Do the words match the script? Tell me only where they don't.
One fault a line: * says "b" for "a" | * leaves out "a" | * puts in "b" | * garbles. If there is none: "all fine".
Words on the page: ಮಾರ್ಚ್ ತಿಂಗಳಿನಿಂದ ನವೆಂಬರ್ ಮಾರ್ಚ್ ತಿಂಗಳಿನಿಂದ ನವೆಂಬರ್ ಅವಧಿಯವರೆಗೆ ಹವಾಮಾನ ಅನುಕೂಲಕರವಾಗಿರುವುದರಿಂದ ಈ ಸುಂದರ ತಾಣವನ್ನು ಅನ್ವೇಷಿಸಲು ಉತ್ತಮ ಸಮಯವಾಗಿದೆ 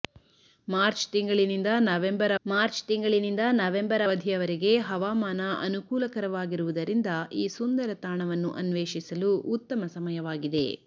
all fine